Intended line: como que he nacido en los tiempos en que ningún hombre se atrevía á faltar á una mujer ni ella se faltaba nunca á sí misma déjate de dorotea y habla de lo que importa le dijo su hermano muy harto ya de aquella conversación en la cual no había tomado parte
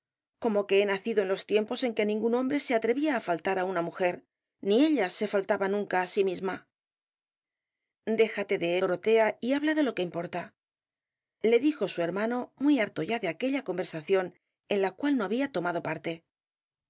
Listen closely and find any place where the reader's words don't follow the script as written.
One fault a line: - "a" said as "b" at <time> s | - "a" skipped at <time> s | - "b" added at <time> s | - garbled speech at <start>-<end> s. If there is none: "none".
none